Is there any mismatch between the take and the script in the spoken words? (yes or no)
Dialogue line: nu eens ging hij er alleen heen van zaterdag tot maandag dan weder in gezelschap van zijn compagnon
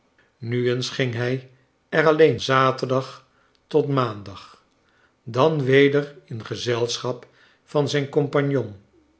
yes